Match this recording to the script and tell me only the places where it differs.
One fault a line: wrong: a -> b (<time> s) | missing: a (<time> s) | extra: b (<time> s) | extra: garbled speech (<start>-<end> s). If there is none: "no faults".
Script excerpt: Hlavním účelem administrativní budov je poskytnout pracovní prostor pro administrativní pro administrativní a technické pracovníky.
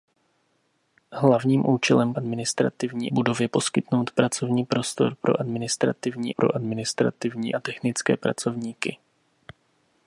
no faults